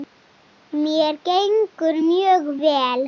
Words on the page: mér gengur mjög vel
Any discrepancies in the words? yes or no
no